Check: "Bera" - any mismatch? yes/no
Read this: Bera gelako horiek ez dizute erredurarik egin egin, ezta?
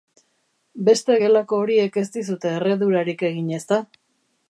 yes